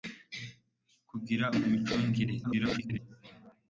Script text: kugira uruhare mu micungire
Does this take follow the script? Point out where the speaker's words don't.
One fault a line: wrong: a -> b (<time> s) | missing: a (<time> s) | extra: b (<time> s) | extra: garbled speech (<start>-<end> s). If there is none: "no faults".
missing: uruhare (1.4 s)
extra: garbled speech (2.4-3.0 s)